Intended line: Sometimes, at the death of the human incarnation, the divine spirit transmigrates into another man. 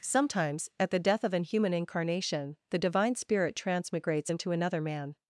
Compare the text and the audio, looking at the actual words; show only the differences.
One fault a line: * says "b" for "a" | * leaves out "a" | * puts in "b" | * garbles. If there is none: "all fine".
* says "an" for "the"